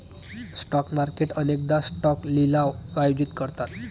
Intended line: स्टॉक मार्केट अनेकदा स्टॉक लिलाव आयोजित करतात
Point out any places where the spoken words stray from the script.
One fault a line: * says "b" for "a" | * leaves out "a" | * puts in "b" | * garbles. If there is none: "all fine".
all fine